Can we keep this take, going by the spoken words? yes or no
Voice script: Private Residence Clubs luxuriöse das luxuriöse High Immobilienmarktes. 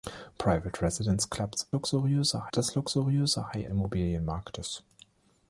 yes